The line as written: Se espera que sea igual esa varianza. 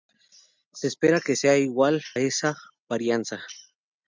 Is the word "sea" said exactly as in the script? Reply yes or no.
yes